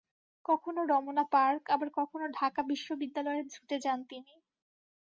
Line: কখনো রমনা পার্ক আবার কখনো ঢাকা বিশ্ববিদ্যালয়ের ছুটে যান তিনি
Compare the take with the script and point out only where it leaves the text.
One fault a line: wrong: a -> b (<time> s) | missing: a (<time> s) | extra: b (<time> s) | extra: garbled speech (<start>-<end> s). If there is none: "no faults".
no faults